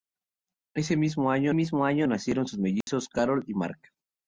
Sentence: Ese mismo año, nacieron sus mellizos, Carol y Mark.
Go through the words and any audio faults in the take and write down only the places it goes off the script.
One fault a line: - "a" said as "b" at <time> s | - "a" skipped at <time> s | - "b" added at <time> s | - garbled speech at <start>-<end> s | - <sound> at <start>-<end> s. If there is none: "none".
- "mismo año" added at 1.5 s
- dropout at 2.8-2.9 s